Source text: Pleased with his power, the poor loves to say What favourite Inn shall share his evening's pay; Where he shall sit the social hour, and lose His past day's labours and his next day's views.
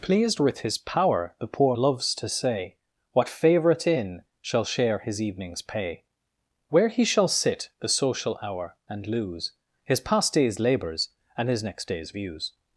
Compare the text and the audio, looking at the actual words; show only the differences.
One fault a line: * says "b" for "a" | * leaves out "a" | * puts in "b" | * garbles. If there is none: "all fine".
all fine